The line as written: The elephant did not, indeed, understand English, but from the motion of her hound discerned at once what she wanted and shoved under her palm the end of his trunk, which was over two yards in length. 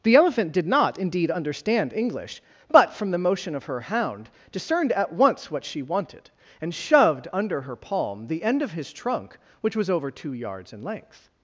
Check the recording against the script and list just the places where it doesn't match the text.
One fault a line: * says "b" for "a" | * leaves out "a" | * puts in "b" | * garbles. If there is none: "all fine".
all fine